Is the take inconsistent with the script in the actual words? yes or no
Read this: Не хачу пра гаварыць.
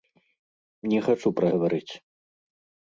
no